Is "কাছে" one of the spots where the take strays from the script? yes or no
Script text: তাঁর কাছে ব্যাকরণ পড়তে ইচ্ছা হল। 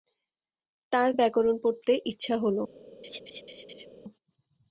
yes